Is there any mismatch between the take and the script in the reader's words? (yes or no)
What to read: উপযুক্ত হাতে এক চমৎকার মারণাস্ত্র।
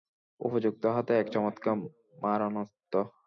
no